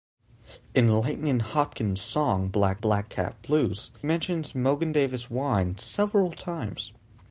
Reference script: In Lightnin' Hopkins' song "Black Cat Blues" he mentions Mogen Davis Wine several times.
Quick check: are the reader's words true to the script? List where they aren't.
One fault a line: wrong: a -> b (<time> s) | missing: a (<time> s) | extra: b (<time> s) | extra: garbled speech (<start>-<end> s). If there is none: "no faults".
extra: black (2.8 s)
missing: he (3.9 s)